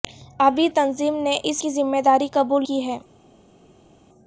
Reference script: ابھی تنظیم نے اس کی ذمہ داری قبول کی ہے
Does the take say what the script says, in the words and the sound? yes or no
yes